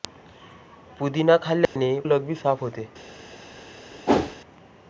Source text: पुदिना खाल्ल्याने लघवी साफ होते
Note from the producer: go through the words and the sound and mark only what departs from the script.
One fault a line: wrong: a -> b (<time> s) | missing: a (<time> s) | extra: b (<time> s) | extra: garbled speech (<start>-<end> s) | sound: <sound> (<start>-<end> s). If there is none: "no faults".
sound: dropout (1.7-1.8 s)
sound: whoosh (4.1-4.4 s)